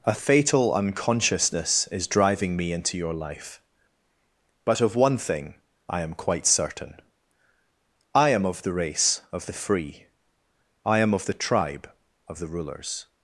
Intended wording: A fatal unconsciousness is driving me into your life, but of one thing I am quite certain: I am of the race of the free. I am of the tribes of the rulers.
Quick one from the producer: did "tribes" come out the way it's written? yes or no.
no